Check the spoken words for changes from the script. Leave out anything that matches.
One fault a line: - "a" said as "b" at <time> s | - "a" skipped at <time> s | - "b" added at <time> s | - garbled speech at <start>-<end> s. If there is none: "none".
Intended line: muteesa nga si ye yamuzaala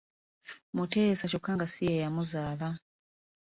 - "kyokka" added at 1.3 s